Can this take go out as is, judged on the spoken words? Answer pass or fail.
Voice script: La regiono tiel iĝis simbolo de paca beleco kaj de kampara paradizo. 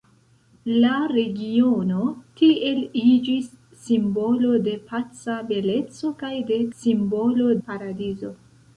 fail